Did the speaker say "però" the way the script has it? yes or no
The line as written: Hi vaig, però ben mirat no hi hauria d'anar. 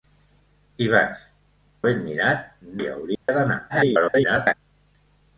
no